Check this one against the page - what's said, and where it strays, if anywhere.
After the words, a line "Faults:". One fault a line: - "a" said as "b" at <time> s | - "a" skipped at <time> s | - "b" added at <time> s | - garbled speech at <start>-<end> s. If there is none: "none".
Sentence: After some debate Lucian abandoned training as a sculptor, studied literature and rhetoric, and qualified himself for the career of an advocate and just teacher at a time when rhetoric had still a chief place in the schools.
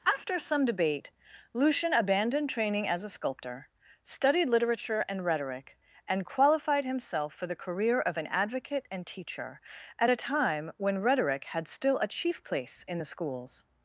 After some debate Lucian abandoned training as a sculptor, studied literature and rhetoric, and qualified himself for the career of an advocate and teacher at a time when rhetoric had still a chief place in the schools.
Faults:
- "just" skipped at 9.1 s